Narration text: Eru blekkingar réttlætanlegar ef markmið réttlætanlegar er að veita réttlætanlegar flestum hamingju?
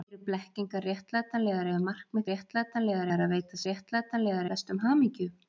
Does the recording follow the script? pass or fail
pass